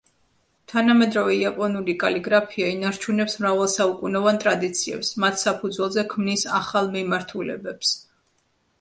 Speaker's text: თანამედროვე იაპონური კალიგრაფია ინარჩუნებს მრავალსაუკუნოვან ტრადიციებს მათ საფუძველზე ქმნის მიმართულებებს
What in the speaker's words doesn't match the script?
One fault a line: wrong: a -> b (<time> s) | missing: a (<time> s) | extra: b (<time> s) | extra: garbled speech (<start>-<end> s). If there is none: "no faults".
extra: ახალ (6.7 s)